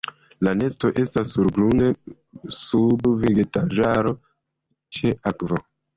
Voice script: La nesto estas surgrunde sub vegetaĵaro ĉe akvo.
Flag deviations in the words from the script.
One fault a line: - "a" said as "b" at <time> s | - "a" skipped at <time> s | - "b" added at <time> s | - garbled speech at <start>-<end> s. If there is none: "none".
none